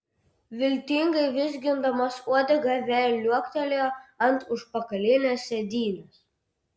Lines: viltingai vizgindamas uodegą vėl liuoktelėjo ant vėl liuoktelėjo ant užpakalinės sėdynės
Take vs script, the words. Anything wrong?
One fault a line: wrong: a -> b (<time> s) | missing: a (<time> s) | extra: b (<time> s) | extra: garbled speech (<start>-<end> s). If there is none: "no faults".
missing: vėl liuoktelėjo ant (4.4 s)